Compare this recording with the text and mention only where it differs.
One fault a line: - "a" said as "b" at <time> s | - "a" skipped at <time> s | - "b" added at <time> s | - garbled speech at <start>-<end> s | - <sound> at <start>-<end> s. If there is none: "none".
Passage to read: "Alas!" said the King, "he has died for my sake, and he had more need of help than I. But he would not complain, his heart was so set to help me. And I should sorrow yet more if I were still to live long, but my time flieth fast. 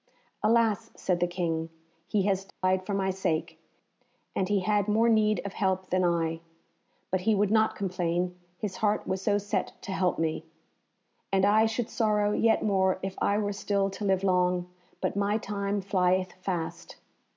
- dropout at 2.5-2.6 s